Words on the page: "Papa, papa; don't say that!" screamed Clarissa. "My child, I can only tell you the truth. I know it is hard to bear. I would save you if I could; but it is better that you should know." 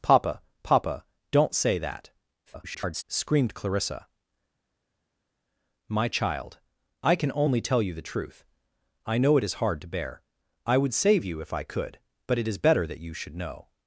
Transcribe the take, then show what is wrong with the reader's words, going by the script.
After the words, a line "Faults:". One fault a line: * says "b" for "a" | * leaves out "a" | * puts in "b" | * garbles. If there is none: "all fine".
"Papa, papa; don't say that!" [garbled] screamed Clarissa. "My child, I can only tell you the truth. I know it is hard to bear. I would save you if I could; but it is better that you should know."
Faults:
* garbles